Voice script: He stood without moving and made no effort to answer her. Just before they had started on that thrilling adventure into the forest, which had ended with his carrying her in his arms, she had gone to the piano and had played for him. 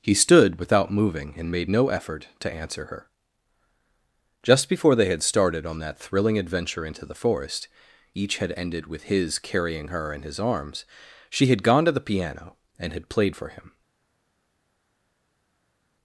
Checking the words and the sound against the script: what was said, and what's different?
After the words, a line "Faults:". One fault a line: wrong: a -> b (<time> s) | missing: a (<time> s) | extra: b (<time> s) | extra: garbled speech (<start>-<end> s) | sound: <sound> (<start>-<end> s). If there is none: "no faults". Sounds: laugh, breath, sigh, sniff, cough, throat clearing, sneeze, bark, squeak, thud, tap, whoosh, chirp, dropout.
He stood without moving and made no effort to answer her. Just before they had started on that thrilling adventure into the forest, each had ended with his carrying her in his arms, she had gone to the piano and had played for him.
Faults:
wrong: which -> each (8.1 s)